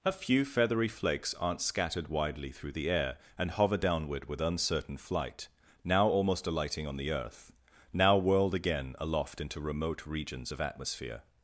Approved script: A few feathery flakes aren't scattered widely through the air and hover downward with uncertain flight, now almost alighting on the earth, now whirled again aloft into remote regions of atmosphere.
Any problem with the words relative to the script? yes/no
no